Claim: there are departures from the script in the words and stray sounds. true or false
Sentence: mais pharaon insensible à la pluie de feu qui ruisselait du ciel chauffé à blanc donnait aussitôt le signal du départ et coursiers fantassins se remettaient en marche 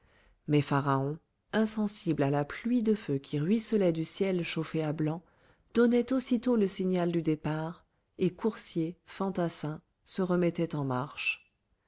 false